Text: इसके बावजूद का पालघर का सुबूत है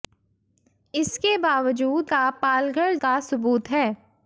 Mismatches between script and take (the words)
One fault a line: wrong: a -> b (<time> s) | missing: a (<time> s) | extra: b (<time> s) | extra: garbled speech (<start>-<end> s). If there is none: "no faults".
no faults